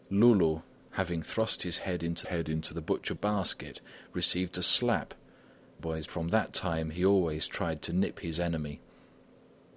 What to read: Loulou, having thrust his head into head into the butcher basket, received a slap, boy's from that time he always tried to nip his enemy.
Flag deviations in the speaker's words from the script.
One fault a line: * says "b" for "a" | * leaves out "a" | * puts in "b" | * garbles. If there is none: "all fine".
all fine